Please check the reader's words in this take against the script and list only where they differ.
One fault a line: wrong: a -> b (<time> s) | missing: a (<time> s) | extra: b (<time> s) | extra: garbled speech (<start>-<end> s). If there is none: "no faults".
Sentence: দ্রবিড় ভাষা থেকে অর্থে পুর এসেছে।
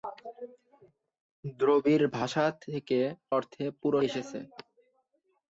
no faults